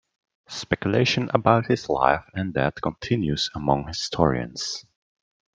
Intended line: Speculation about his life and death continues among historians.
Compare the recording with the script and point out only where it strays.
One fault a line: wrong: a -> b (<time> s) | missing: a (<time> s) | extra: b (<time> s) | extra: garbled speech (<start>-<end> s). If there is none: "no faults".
no faults